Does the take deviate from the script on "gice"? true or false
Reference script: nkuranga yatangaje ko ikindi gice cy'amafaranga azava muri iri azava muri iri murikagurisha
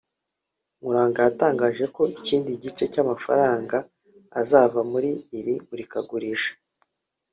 false